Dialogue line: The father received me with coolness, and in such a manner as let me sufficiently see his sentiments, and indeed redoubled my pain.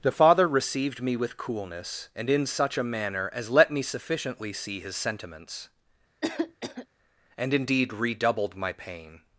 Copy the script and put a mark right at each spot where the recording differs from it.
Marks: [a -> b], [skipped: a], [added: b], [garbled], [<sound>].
The father received me with coolness, and in such a manner as let me sufficiently see his sentiments, [cough] and indeed redoubled my pain.